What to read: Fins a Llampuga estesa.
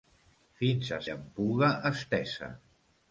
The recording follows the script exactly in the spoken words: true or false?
true